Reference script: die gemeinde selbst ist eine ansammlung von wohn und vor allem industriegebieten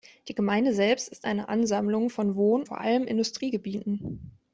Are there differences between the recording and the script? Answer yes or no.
yes